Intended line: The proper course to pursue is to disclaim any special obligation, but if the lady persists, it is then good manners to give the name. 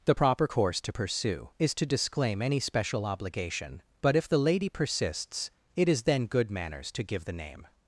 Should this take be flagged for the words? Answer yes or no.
no